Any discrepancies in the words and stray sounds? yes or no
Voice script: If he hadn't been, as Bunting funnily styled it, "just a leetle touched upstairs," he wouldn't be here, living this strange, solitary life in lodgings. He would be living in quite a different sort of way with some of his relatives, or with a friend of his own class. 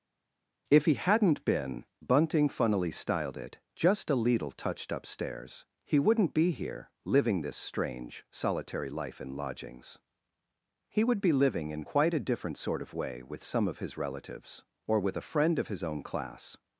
yes